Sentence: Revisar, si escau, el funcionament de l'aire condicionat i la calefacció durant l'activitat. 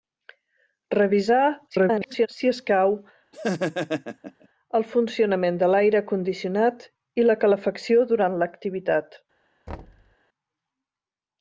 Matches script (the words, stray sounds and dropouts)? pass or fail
fail